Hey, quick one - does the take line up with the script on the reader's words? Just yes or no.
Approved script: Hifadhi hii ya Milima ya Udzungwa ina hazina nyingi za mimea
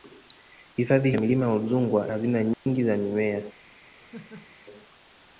no